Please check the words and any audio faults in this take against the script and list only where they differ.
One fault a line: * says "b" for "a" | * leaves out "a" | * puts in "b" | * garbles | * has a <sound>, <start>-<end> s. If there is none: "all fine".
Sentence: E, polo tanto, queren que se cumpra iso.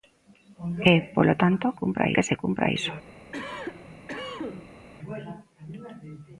* says "cumpra" for "queren"
* has a cough, 3.3-4.9 s